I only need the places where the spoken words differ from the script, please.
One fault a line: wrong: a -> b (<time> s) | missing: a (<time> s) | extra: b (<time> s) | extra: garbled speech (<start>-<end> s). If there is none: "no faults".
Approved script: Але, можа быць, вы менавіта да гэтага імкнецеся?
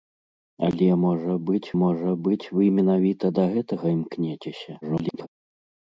extra: можа быць (1.8 s)
extra: garbled speech (4.8-5.3 s)